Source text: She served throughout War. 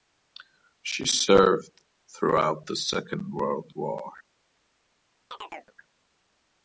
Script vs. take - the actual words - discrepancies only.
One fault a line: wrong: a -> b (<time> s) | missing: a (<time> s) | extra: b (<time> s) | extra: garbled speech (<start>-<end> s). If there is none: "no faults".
extra: the Second World (2.6 s)